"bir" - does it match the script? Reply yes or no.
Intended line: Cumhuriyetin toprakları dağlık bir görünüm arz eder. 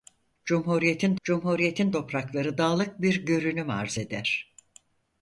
yes